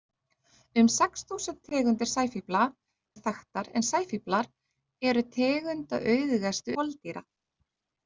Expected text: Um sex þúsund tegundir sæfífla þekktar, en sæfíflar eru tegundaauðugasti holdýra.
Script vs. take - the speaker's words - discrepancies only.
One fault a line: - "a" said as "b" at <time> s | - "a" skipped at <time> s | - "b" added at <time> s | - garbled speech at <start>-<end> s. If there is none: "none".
none